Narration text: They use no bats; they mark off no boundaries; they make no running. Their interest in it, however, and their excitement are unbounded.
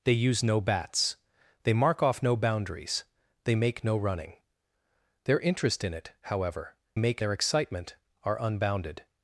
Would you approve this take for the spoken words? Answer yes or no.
no